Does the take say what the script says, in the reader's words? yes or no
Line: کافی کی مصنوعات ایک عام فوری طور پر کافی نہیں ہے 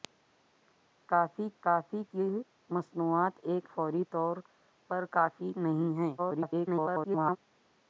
no